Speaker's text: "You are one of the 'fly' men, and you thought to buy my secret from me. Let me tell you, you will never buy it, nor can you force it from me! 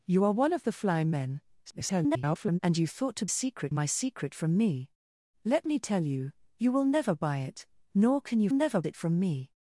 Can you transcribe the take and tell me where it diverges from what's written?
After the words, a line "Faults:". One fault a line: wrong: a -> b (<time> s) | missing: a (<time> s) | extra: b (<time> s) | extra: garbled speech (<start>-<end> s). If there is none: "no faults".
"You are one of the 'fly' men, [garbled] and you thought to secret my secret from me. Let me tell you, you will never buy it, nor can you never it from me!
Faults:
extra: garbled speech (1.7-2.6 s)
wrong: buy -> secret (3.3 s)
wrong: force -> never (8.5 s)